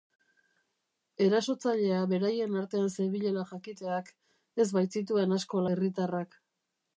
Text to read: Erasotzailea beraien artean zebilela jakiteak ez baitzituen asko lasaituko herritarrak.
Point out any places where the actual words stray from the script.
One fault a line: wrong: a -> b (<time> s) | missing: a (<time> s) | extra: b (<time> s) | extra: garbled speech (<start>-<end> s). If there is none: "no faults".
missing: lasaituko (5.6 s)